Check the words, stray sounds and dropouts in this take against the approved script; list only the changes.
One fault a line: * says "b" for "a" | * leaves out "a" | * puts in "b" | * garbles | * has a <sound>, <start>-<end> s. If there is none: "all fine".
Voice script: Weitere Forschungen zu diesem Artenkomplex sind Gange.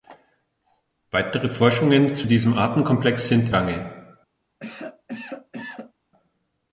* has a cough, 4.6-5.9 s